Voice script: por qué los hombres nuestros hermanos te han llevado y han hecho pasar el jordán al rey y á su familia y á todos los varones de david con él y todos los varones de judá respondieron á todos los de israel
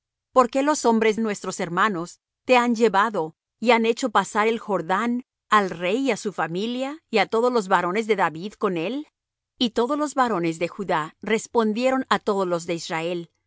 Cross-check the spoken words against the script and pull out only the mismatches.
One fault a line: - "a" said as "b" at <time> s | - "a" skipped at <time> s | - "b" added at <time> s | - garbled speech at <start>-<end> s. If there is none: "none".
none